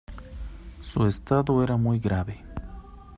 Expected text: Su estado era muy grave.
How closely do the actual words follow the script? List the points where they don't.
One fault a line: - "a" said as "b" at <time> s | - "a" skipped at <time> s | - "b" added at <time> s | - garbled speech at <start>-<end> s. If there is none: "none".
none